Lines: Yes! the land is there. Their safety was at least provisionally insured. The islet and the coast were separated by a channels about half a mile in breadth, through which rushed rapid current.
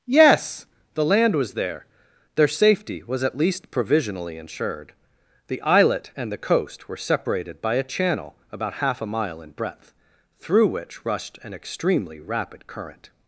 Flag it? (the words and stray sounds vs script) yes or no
yes